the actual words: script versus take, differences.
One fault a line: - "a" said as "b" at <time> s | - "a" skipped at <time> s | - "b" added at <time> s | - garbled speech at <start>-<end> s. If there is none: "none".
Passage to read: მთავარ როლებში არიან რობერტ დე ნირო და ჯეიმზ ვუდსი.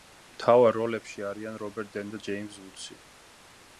- "ნირო" skipped at 2.0 s